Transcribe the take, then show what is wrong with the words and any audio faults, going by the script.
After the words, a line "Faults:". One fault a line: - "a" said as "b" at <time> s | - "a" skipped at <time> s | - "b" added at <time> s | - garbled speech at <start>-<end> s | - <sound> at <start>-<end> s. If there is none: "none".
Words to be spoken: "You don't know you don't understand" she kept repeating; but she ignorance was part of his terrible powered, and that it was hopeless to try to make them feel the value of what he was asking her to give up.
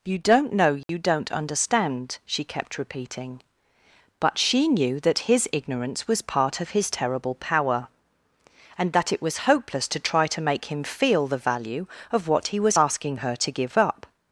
"You don't know you don't understand" she kept repeating; but she knew that his ignorance was part of his terrible power, and that it was hopeless to try to make him feel the value of what he was asking her to give up.
Faults:
- dropout at 0.8-0.9 s
- "knew that his" added at 4.7 s
- "powered" said as "power" at 7.3 s
- "them" said as "him" at 10.7 s